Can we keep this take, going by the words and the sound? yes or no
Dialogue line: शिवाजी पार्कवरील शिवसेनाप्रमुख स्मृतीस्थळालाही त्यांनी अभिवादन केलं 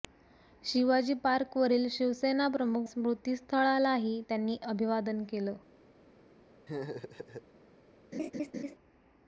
no